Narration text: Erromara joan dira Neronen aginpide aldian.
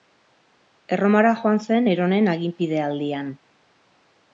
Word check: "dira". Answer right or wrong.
wrong